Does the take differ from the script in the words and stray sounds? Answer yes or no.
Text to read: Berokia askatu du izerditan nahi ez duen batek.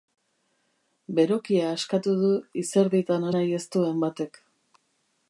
no